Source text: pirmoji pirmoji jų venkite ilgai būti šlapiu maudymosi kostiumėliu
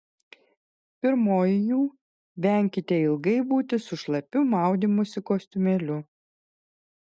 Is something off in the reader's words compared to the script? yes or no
yes